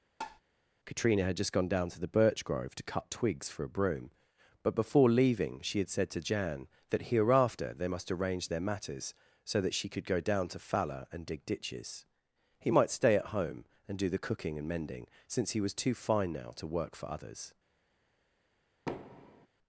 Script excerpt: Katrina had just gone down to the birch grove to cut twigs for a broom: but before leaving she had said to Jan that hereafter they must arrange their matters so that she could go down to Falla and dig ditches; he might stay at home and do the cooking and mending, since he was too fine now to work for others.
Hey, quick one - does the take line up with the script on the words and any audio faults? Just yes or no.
no